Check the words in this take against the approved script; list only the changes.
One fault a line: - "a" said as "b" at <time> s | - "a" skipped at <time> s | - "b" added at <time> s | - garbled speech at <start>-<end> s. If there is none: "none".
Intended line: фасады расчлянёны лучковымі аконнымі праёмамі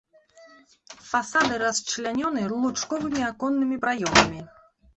none